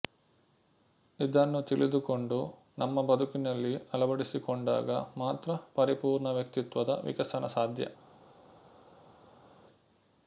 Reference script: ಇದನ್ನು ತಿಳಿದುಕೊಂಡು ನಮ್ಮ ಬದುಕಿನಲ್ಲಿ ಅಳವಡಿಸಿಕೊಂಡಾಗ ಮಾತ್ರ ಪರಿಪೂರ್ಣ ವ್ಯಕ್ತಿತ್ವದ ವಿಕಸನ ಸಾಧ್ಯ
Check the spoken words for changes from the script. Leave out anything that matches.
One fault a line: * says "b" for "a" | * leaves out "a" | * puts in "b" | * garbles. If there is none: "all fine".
all fine